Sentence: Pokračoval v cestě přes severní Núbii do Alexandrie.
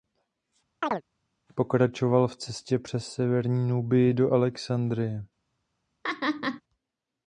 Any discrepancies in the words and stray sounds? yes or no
yes